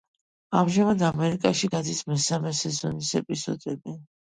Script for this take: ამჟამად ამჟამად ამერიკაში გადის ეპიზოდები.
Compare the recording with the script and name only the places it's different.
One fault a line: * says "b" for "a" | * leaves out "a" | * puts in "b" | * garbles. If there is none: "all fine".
* leaves out "ამჟამად"
* puts in "მესამე სეზონის"